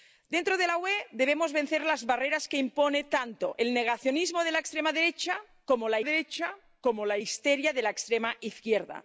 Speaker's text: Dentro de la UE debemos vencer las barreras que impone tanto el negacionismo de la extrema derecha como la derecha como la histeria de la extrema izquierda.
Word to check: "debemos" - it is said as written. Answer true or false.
true